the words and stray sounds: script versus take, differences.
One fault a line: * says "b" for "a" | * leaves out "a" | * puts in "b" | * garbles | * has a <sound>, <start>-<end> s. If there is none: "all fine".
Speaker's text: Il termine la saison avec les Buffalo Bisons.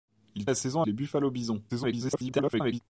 * leaves out "termine"
* leaves out "avec"
* garbles